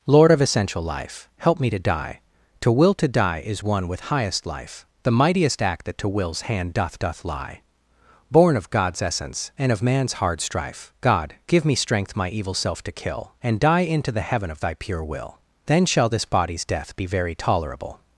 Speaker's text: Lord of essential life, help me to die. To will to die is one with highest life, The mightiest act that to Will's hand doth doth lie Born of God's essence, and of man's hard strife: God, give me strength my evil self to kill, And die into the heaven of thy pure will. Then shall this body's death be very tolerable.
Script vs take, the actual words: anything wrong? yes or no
no